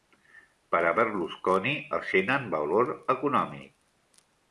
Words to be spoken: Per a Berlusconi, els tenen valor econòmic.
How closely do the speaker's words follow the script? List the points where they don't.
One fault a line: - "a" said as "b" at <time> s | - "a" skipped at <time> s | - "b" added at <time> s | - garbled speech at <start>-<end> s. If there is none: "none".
none